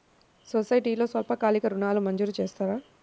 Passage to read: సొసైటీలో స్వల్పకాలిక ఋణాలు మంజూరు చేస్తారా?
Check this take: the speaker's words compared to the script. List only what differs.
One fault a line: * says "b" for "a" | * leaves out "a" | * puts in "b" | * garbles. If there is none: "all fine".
all fine